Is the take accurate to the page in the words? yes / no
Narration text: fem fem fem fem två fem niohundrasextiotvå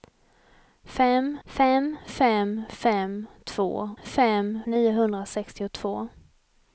yes